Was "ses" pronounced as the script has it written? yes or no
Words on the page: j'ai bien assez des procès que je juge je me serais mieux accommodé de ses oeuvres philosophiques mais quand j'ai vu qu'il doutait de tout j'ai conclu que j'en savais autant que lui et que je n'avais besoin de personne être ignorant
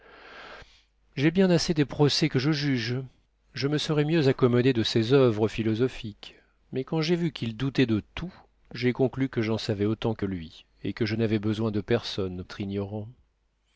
yes